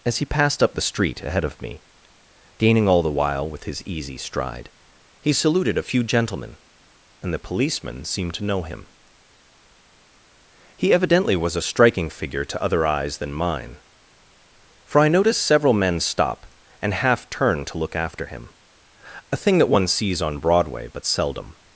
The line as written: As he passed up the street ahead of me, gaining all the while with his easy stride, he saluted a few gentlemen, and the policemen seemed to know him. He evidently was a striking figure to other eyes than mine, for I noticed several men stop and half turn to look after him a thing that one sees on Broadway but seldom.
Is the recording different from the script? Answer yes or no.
no